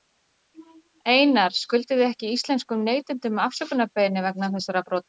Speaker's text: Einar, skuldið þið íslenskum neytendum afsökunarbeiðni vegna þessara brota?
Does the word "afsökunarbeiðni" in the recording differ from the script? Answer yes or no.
no